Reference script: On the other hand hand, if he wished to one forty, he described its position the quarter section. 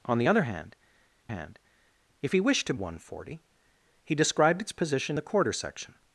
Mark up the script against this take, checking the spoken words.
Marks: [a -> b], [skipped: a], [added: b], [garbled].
On the other hand hand, if he wished to one forty, he described its position the quarter section.